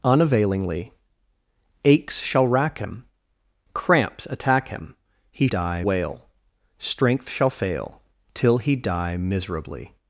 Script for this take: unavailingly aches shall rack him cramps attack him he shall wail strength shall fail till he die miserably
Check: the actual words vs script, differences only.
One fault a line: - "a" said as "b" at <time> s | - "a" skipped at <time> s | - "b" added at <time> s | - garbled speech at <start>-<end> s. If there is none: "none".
- "shall" said as "die" at 5.4 s